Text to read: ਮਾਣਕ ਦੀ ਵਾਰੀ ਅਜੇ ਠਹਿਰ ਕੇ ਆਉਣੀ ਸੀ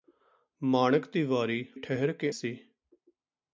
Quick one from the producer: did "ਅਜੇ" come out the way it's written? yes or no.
no